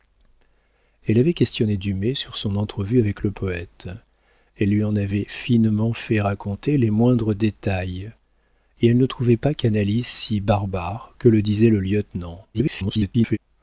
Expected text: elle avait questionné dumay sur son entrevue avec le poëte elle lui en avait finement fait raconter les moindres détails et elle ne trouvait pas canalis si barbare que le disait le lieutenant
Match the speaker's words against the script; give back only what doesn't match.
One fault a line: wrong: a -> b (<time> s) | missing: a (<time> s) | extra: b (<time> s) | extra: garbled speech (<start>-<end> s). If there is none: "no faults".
extra: garbled speech (12.5-13.4 s)